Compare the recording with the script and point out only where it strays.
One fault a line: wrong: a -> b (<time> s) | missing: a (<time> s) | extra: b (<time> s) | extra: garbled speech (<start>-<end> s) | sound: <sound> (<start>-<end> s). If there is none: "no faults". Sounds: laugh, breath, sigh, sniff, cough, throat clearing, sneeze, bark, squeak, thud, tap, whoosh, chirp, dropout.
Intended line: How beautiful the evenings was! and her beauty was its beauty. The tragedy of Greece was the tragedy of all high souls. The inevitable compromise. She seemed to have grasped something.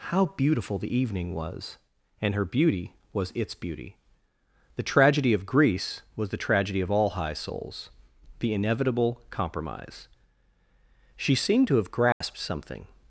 wrong: evenings -> evening (0.9 s)
sound: dropout (12.1-12.2 s)